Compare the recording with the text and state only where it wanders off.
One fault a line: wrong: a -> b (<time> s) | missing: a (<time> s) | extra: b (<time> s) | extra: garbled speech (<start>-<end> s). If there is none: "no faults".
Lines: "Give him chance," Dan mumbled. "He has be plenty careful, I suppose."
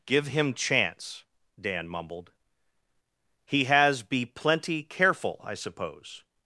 no faults